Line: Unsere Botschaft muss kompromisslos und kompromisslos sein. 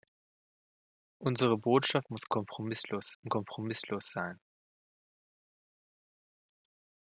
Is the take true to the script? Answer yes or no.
yes